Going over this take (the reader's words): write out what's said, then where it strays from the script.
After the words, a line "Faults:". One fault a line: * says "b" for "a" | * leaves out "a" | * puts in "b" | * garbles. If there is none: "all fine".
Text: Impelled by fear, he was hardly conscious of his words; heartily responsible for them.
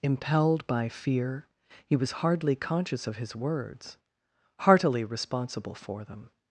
Impelled by fear, he was hardly conscious of his words; heartily responsible for them.
Faults:
all fine